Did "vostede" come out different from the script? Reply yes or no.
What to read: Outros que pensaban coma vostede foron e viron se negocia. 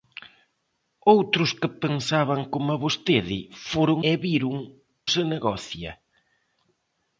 no